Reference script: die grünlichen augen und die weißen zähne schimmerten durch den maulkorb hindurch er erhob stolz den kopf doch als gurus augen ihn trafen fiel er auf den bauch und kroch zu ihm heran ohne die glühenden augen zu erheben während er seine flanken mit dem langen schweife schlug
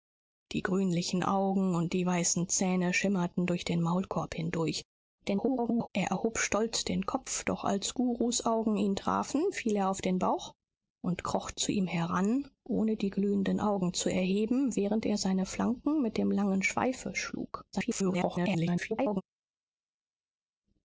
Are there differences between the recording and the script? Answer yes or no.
yes